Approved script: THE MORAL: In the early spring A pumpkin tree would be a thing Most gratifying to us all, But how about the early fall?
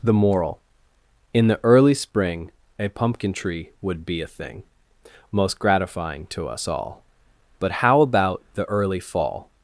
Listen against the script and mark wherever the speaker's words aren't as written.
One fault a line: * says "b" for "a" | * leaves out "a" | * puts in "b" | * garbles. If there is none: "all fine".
all fine